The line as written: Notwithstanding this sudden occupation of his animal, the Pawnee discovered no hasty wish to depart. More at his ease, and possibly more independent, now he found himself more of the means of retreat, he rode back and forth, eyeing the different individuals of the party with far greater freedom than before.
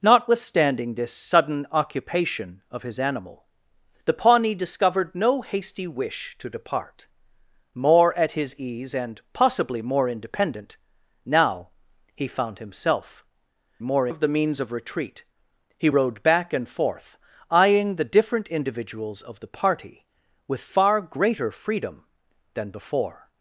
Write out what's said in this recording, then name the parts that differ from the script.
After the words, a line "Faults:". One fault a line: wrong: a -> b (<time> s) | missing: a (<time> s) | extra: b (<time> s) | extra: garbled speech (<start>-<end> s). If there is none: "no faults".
Notwithstanding this sudden occupation of his animal, the Pawnee discovered no hasty wish to depart. More at his ease, and possibly more independent, now he found himself more of the means of retreat, he rode back and forth, eyeing the different individuals of the party with far greater freedom than before.
Faults:
no faults